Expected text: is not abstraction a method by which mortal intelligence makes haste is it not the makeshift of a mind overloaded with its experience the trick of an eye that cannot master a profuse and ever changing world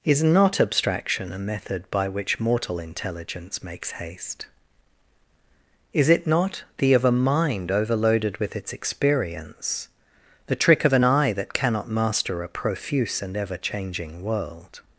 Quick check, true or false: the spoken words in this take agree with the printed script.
false